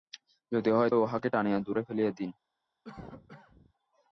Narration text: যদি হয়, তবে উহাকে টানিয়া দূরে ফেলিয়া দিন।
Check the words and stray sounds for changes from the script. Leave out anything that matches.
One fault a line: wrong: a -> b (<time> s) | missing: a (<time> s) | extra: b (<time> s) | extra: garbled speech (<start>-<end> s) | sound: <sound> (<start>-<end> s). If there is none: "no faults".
missing: তবে (0.9 s)
sound: cough (2.8-3.7 s)